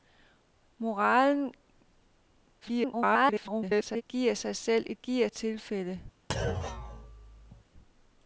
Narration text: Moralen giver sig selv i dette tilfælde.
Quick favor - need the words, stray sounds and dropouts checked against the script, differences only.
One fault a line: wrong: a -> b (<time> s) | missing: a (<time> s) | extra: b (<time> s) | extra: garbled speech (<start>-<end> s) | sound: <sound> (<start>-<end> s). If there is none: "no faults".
extra: garbled speech (2.6-4.0 s)
wrong: dette -> giver (5.0 s)
sound: thud (6.3-7.6 s)